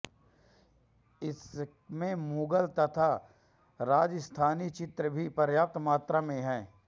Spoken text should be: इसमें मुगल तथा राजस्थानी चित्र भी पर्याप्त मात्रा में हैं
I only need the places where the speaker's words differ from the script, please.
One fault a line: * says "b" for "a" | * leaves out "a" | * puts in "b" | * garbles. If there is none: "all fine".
all fine